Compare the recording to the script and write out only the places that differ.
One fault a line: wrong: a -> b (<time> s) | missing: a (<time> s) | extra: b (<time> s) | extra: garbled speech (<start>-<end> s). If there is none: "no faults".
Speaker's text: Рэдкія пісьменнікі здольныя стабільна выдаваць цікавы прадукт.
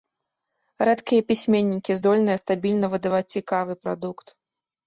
no faults